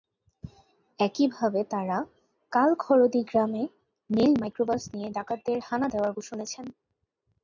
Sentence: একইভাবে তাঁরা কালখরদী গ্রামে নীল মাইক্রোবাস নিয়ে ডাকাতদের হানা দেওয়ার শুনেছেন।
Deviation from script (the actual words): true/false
false